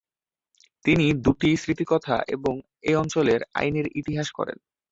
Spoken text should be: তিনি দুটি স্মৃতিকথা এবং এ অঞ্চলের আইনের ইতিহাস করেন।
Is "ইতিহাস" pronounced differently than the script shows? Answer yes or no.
no